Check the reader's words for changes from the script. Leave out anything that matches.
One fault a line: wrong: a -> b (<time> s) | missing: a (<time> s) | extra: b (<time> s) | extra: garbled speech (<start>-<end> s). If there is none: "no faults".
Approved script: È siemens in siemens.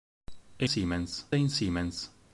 no faults